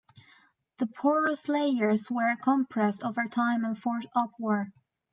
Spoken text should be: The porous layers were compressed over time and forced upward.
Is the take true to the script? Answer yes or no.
yes